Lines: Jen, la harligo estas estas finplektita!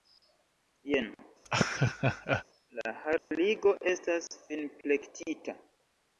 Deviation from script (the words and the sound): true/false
true